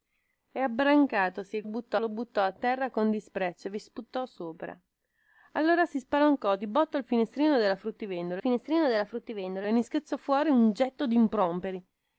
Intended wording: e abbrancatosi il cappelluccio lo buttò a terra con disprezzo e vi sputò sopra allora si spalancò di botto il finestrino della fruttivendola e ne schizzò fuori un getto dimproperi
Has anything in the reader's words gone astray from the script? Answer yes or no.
yes